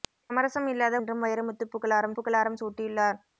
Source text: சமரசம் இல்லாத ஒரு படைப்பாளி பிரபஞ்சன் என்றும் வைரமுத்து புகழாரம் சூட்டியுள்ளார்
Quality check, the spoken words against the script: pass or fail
fail